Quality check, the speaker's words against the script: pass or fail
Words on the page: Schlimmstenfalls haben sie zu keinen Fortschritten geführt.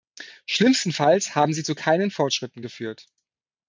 pass